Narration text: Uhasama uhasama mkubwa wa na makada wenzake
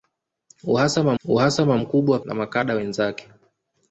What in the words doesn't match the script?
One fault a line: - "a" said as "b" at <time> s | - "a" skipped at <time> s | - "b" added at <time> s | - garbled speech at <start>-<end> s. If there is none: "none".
none